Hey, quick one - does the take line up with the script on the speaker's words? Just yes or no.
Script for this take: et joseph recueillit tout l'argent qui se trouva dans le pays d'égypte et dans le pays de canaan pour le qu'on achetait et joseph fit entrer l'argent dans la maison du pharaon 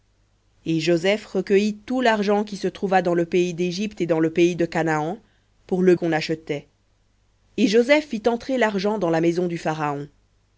yes